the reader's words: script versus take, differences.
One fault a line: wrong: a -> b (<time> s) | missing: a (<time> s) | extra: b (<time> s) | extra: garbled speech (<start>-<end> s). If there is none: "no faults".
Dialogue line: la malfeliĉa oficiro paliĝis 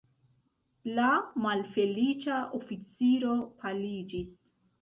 no faults